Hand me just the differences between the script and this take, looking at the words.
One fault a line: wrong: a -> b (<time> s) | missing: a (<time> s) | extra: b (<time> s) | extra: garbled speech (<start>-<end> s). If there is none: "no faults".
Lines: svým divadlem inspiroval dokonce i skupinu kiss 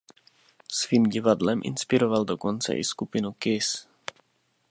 no faults